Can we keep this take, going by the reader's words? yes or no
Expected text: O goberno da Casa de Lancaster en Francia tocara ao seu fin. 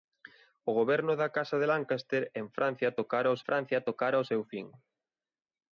no